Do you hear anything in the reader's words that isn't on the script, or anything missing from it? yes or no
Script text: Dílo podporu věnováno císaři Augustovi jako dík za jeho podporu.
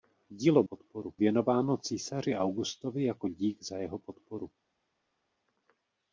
no